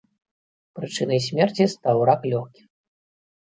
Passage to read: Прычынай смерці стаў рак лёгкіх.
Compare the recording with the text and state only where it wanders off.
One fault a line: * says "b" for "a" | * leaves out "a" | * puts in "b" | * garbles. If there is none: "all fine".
all fine